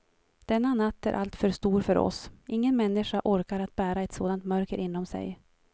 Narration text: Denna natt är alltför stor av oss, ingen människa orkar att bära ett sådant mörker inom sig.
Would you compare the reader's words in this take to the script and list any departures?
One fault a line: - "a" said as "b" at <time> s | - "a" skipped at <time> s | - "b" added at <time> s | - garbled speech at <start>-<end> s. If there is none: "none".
- "av" said as "för" at 1.8 s